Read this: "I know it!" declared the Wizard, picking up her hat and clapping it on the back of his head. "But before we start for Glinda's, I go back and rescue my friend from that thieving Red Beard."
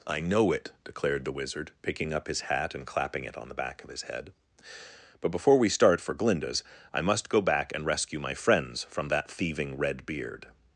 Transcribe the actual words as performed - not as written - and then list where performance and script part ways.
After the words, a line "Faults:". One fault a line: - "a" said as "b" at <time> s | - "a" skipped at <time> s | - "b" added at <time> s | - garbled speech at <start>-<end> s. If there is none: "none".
"I know it!" declared the Wizard, picking up his hat and clapping it on the back of his head. "But before we start for Glinda's, I must go back and rescue my friends from that thieving Red Beard."
Faults:
- "her" said as "his" at 2.3 s
- "must" added at 7.0 s
- "friend" said as "friends" at 8.3 s